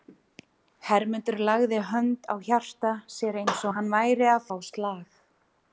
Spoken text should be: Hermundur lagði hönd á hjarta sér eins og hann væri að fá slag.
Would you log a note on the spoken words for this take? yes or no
no